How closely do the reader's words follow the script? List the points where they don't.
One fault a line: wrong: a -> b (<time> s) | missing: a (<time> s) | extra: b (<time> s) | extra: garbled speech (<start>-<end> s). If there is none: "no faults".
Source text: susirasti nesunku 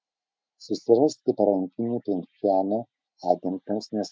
extra: parankinių pchenjano agentams (1.4 s)